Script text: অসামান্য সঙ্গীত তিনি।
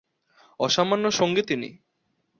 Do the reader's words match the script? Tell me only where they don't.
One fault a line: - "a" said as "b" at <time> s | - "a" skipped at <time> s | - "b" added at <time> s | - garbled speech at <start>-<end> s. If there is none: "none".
none